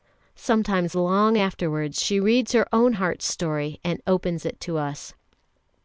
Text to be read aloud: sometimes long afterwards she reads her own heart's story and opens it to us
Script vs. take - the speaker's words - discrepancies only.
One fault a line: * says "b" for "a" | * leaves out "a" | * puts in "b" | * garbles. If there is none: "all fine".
all fine